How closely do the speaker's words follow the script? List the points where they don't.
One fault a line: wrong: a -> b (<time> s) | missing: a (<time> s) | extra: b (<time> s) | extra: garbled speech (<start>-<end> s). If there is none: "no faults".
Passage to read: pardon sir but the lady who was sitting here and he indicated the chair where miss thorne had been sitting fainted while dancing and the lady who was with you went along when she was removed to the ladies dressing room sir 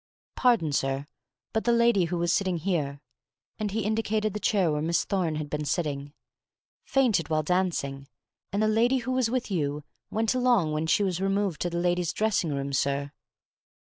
no faults